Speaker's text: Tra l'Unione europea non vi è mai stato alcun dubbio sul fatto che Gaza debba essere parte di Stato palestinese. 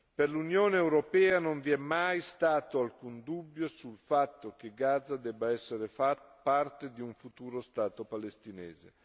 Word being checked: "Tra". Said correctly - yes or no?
no